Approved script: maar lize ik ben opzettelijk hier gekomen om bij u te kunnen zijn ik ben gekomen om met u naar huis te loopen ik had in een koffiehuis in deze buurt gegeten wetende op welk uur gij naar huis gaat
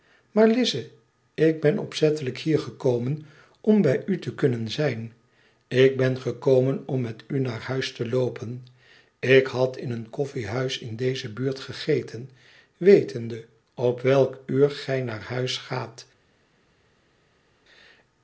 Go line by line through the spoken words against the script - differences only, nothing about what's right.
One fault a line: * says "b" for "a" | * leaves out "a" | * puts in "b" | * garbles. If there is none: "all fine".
all fine